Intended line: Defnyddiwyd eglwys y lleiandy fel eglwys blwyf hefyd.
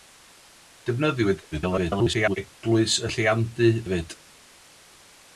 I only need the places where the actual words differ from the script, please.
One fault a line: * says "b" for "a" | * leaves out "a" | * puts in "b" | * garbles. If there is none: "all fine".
* garbles
* leaves out "fel eglwys blwyf"